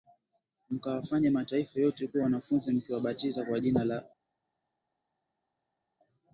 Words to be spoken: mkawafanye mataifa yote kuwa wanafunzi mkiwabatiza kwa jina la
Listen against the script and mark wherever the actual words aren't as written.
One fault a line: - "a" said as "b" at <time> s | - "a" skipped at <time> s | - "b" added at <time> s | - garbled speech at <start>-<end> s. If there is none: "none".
none